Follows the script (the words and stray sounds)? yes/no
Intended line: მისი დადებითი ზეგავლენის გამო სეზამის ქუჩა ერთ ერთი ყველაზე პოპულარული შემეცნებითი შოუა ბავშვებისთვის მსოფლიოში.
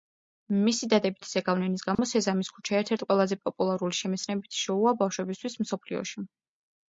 no